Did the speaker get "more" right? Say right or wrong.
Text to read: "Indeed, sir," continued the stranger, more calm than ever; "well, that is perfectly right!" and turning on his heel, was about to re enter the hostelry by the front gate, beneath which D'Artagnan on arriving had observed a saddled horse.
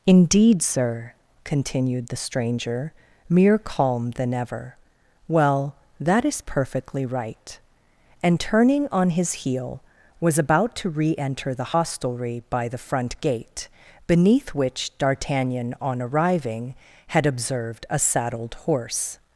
wrong